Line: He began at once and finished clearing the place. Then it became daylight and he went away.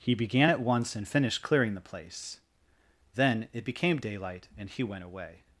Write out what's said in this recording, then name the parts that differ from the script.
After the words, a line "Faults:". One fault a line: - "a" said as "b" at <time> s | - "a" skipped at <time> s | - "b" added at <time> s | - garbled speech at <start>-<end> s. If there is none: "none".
He began at once and finished clearing the place. Then it became daylight and he went away.
Faults:
none